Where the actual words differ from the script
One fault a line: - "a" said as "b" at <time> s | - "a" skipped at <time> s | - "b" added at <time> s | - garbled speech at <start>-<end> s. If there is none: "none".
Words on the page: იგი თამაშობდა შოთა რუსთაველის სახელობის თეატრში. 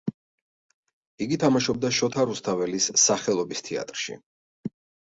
none